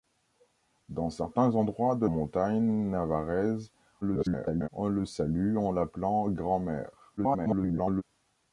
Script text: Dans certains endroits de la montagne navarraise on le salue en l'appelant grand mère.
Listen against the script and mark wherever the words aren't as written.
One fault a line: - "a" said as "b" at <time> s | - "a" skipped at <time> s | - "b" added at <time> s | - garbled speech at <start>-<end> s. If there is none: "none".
- "la" skipped at 2.1 s
- garbled speech at 4.0-4.7 s
- garbled speech at 7.2-8.0 s